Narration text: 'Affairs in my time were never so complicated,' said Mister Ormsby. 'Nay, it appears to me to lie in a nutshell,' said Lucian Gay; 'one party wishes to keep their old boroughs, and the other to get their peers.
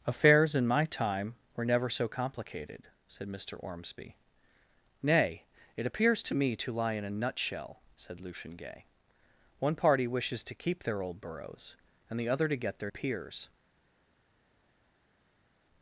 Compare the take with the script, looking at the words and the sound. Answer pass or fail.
pass